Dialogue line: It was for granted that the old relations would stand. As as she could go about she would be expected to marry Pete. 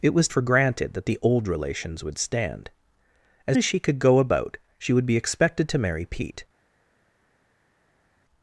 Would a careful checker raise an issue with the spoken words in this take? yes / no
no